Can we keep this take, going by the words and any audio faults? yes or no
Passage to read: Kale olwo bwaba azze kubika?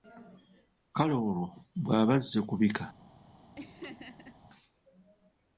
no